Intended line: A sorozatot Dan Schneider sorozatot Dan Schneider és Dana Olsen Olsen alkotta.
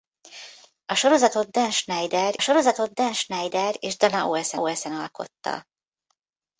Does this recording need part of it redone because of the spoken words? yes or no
no